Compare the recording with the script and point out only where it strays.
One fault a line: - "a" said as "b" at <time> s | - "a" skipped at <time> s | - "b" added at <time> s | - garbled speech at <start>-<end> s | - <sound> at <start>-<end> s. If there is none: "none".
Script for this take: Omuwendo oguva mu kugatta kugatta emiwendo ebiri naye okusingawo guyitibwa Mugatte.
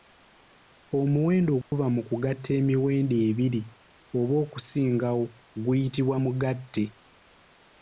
- dropout at 1.6-1.7 s
- "kugatta" skipped at 2.5 s
- "naye" said as "oba" at 4.2 s